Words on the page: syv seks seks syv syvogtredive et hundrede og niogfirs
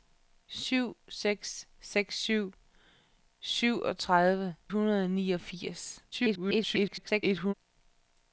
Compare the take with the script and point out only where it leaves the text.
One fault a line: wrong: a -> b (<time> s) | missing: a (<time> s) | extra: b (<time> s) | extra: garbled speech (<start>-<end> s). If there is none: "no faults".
missing: et (4.5 s)
extra: garbled speech (6.1-7.5 s)